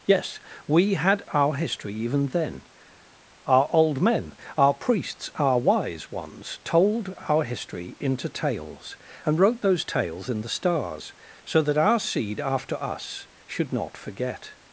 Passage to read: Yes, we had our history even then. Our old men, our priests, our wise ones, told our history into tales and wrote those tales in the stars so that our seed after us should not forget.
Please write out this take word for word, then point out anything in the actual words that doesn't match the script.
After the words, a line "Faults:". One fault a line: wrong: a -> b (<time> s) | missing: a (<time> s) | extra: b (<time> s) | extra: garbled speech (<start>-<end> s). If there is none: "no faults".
Yes, we had our history even then. Our old men, our priests, our wise ones, told our history into tales and wrote those tales in the stars so that our seed after us should not forget.
Faults:
no faults